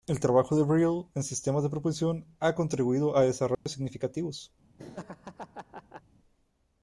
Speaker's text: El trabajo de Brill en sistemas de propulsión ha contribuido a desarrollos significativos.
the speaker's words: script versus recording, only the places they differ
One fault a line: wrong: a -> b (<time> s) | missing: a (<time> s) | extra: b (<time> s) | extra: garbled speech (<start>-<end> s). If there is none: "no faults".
no faults